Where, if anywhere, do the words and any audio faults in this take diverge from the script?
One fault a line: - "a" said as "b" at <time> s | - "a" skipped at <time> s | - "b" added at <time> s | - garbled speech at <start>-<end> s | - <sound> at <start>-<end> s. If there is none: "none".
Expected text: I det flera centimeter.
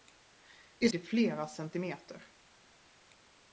none